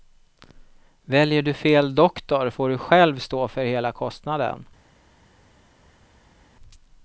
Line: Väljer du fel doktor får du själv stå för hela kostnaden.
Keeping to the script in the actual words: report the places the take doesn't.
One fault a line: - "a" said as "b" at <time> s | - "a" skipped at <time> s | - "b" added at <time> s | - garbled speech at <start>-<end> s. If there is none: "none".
none